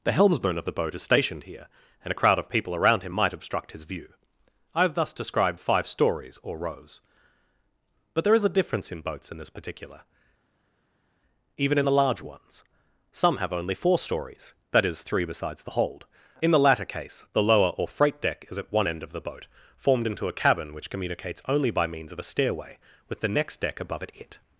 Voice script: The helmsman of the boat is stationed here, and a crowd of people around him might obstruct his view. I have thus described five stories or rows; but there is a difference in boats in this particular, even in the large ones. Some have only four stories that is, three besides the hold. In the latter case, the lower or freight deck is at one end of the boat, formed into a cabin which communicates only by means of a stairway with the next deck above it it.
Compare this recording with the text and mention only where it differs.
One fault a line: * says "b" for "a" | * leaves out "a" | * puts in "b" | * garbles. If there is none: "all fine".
all fine